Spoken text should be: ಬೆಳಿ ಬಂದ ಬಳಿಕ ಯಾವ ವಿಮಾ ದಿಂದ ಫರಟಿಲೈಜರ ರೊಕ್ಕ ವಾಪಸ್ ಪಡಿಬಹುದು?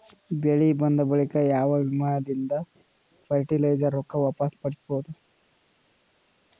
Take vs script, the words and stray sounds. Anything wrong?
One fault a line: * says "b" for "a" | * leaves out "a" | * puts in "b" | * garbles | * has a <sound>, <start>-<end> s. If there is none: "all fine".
all fine